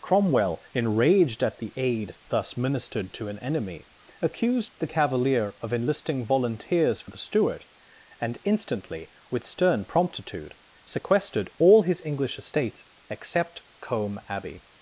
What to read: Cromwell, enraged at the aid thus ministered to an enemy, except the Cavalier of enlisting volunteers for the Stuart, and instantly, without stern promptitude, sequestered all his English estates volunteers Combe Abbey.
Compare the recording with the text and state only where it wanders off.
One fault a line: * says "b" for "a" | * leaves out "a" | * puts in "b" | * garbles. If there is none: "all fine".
* says "accused" for "except"
* says "with" for "without"
* says "except" for "volunteers"